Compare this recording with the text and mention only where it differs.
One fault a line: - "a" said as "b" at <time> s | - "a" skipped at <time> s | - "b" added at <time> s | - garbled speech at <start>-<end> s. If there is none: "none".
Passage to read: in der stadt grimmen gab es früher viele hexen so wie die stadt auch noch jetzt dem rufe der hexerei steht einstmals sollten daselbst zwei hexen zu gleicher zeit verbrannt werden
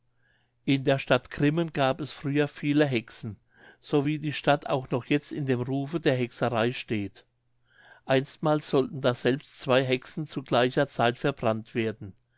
- "in" added at 5.3 s